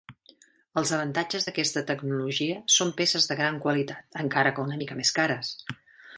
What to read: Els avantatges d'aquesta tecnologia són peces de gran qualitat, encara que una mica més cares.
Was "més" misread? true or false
false